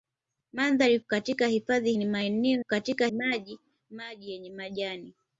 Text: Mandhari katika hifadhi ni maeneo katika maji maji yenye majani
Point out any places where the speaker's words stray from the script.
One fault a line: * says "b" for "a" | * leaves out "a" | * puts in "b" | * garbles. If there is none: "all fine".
all fine